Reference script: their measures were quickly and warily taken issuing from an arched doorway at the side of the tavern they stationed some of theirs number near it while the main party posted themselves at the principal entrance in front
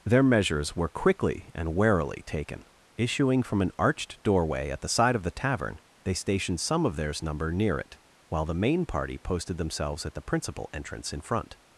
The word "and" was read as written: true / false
true